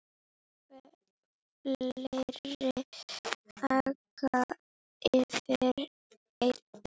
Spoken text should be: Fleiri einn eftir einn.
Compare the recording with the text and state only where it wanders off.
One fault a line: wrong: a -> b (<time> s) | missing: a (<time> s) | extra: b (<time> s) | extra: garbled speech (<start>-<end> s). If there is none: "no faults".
wrong: einn -> aka (3.7 s)